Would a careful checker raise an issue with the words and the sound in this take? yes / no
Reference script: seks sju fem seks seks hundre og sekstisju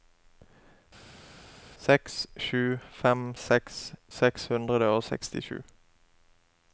no